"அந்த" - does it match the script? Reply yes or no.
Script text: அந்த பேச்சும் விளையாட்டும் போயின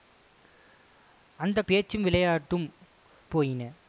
yes